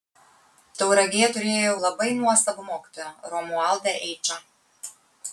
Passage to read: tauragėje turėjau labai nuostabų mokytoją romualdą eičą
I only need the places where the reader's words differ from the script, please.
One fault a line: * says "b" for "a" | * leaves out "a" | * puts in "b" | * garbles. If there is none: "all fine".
all fine